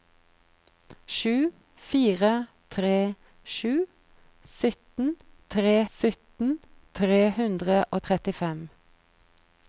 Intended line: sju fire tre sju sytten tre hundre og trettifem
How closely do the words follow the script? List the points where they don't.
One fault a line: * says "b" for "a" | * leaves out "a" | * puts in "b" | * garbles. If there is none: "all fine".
* puts in "sytten tre"